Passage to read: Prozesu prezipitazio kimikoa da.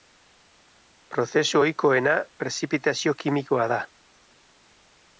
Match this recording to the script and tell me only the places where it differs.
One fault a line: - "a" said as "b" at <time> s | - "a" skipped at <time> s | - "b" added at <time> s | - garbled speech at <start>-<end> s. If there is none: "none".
- "ohikoena" added at 1.6 s